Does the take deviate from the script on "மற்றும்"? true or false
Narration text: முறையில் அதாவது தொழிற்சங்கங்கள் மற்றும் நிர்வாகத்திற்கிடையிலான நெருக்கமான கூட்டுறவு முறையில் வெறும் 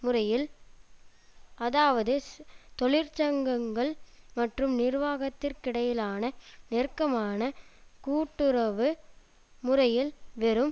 false